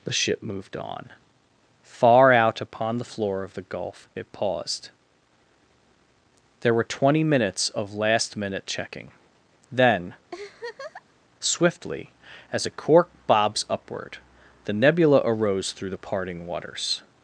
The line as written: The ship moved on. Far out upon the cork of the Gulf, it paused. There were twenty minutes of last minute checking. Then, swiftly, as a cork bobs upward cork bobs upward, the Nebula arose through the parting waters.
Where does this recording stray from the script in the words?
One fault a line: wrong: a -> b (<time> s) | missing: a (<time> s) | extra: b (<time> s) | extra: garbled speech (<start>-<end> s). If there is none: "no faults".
wrong: cork -> floor (3.0 s)
missing: cork bobs upward (14.2 s)